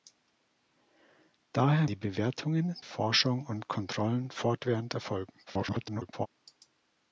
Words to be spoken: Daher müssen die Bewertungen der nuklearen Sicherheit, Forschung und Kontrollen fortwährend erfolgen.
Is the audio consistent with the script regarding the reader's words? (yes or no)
no